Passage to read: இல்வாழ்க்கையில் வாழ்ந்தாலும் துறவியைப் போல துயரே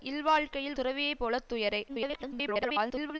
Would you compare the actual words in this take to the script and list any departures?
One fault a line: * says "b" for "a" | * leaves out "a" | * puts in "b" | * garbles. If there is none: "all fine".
* leaves out "வாழ்ந்தாலும்"
* garbles